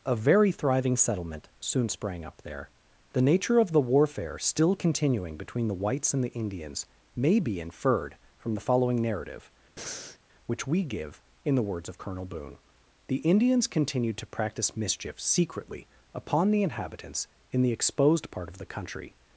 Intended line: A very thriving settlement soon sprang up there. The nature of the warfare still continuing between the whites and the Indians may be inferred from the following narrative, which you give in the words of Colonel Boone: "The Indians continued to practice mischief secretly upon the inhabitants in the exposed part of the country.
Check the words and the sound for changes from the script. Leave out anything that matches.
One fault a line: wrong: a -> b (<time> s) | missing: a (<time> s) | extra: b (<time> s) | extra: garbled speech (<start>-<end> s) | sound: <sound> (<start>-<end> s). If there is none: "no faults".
sound: breath (9.8-10.2 s)
wrong: you -> we (10.7 s)